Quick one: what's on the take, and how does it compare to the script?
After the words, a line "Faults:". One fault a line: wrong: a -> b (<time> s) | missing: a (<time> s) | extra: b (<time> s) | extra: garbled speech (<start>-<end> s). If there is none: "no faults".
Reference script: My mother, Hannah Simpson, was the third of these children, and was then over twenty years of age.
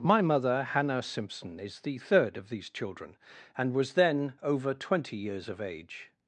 My mother, Hannah Simpson, is the third of these children, and was then over twenty years of age.
Faults:
wrong: was -> is (1.6 s)